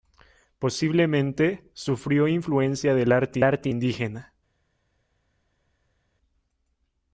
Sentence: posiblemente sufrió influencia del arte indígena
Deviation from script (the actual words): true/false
true